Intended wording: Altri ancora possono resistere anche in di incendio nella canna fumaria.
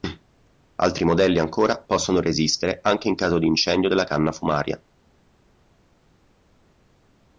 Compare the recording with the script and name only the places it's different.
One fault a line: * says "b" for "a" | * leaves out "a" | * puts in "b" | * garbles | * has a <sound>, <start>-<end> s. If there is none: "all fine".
* puts in "modelli"
* puts in "caso"
* says "della" for "nella"